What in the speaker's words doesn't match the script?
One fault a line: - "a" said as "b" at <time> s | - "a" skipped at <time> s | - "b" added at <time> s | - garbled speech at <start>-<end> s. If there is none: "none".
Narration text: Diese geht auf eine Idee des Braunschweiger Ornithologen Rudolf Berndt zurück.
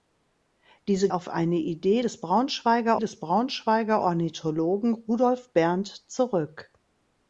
- "geht" skipped at 1.1 s
- "des Braunschweiger" added at 3.0 s